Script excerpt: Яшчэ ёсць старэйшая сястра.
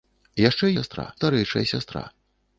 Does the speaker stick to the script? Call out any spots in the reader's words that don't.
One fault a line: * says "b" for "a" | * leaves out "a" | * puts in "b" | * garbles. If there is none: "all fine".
* says "сястра" for "ёсць"